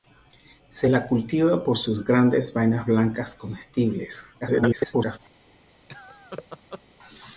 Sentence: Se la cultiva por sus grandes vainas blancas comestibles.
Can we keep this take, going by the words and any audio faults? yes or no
no